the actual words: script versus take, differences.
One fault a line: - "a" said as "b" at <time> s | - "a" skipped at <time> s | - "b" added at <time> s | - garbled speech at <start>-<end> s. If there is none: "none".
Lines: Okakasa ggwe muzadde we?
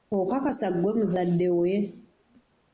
none